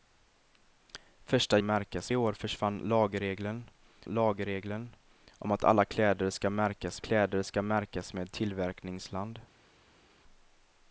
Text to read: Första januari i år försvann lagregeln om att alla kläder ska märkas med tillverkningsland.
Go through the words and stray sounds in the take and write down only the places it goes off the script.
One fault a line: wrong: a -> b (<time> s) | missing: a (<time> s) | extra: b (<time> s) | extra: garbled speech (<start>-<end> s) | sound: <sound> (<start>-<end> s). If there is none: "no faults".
wrong: januari -> märkas (1.6 s)
extra: lagregeln (4.0 s)
extra: kläder ska märkas (7.0 s)